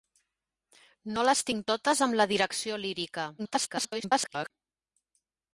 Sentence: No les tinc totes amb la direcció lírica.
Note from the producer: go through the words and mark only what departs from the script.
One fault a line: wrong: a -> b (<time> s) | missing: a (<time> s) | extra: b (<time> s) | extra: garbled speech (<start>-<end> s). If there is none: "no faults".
extra: garbled speech (3.4-4.5 s)